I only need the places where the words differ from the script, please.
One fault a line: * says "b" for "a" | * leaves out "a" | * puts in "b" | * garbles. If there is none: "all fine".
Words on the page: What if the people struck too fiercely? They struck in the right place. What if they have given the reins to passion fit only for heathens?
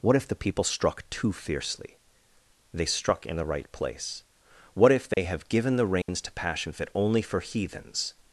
all fine